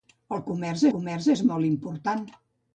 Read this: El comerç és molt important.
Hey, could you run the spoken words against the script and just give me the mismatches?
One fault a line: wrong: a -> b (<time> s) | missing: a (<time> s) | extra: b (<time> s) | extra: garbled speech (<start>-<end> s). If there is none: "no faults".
extra: comerç (0.9 s)